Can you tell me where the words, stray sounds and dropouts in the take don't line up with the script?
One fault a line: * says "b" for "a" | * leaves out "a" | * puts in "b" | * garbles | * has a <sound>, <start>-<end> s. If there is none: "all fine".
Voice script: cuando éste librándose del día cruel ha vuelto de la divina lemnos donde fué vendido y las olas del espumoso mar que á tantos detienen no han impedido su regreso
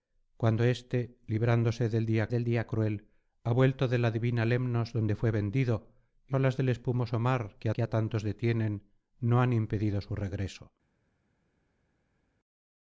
* puts in "del día"
* leaves out "las"
* puts in "que"